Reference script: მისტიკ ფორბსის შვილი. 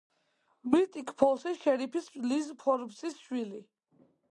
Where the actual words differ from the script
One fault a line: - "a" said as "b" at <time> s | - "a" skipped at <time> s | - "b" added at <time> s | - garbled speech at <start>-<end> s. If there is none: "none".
- "ფოლსის შერიფის ლიზ" added at 1.2 s